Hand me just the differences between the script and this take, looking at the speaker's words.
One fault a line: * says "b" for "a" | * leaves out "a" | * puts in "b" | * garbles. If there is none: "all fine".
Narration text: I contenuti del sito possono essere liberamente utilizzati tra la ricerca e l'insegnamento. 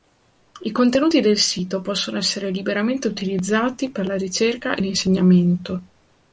* says "per" for "tra"